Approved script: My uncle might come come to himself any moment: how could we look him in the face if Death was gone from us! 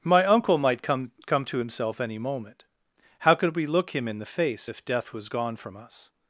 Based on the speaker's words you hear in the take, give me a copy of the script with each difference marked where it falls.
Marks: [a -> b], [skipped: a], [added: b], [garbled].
My uncle might come come to himself any moment: how could we look him in the face if Death was gone from us!